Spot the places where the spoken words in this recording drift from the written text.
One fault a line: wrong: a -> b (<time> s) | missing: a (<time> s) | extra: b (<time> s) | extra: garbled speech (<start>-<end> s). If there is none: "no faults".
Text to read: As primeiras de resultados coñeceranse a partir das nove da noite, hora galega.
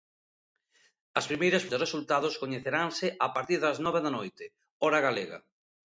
no faults